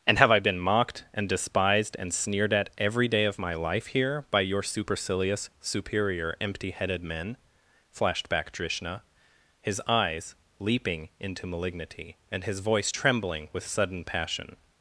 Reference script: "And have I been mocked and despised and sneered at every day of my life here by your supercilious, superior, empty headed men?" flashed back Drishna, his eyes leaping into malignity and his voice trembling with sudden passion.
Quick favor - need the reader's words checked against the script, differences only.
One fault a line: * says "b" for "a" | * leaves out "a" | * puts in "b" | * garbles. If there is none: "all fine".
all fine